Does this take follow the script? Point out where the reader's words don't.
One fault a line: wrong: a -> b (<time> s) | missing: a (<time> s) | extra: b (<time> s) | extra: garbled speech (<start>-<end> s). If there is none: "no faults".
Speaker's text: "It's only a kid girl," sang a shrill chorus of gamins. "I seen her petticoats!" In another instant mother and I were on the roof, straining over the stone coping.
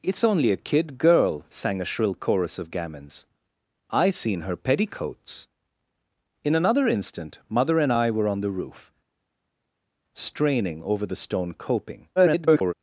extra: garbled speech (12.2-12.7 s)